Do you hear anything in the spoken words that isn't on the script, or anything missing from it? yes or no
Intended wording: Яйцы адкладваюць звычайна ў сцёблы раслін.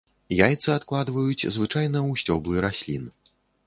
no